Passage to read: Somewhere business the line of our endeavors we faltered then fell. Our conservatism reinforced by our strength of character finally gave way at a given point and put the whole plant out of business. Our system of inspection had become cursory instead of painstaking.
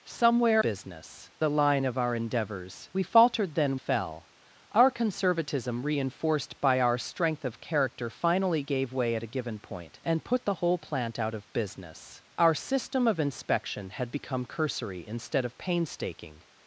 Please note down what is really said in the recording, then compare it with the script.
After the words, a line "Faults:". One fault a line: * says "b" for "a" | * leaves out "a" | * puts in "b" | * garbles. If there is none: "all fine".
Somewhere business the line of our endeavors we faltered then fell. Our conservatism reinforced by our strength of character finally gave way at a given point and put the whole plant out of business. Our system of inspection had become cursory instead of painstaking.
Faults:
all fine